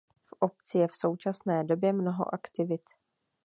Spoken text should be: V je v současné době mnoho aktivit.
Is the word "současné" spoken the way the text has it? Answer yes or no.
yes